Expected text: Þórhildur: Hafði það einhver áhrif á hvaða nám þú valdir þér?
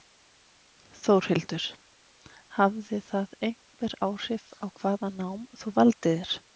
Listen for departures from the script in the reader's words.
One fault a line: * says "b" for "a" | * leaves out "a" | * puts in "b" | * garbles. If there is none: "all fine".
all fine